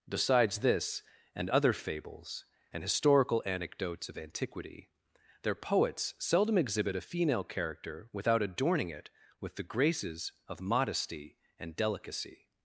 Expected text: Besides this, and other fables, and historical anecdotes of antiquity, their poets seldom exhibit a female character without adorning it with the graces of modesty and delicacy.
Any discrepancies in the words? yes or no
no